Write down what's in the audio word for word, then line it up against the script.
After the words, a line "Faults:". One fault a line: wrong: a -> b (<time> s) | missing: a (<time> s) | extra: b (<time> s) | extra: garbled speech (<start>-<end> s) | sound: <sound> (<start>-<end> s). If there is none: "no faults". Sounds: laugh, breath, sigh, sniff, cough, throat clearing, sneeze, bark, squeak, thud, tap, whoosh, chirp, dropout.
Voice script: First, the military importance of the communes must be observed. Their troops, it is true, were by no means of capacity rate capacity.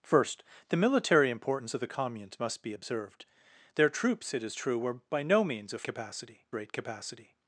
First, the military importance of the communes must be observed. Their troops, it is true, were by no means of capacity rate capacity.
Faults:
no faults